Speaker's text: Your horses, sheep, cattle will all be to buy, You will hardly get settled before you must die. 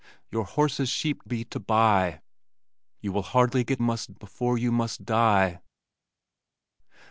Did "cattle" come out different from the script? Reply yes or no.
yes